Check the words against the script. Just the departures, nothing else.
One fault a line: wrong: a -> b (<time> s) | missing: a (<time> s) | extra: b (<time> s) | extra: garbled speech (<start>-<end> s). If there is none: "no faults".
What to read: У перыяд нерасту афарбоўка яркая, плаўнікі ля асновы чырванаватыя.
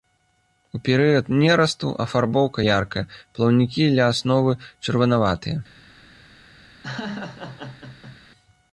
no faults